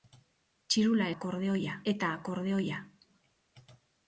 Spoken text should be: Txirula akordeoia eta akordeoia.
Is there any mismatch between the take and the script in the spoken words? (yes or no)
no